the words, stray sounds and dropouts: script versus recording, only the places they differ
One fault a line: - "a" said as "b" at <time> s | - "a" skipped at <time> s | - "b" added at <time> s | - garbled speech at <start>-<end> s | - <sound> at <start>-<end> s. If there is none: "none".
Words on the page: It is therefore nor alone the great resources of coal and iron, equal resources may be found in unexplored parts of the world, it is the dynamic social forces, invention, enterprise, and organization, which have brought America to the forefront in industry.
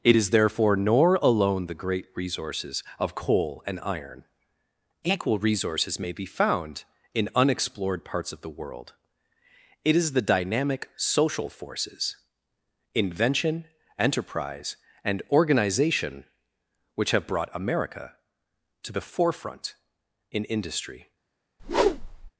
- whoosh at 21.6-22.3 s